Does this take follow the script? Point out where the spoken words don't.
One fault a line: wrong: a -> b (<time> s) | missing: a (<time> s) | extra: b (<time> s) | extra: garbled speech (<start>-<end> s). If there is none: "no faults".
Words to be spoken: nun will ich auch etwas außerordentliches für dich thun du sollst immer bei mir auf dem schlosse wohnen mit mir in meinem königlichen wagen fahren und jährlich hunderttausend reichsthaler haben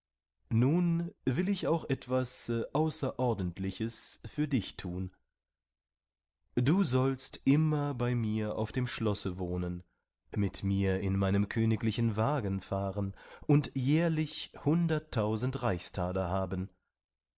no faults